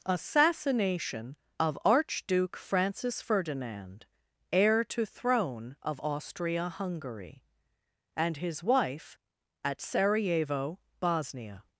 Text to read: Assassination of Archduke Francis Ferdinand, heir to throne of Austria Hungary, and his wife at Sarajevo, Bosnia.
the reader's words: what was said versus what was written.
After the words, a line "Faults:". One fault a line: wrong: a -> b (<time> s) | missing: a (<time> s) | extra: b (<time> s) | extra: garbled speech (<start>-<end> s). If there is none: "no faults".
Assassination of Archduke Francis Ferdinand, heir to throne of Austria Hungary, and his wife at Sarajevo, Bosnia.
Faults:
no faults